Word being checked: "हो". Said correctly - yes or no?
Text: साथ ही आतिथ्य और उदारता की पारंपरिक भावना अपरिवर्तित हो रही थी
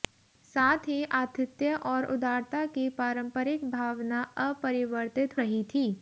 no